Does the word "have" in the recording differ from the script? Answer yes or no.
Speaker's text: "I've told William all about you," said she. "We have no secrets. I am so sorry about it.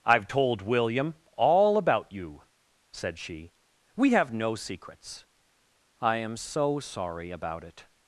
no